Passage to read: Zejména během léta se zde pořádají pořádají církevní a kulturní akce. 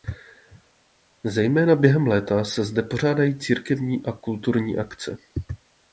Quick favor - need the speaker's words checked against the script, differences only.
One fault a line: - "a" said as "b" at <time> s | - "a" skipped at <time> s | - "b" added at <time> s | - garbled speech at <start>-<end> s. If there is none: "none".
- "pořádají" skipped at 3.4 s